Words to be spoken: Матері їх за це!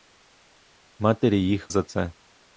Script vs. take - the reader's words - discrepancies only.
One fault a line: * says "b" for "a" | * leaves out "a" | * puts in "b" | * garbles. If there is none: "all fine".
all fine